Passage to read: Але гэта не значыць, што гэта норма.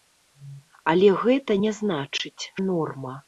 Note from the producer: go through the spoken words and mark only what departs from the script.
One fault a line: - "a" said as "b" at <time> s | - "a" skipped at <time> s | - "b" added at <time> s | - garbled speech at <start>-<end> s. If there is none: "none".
- "што гэта" skipped at 2.4 s